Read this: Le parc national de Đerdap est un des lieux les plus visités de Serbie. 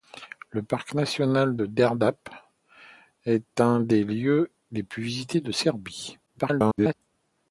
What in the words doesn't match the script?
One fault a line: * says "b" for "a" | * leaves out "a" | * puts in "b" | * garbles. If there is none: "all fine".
* garbles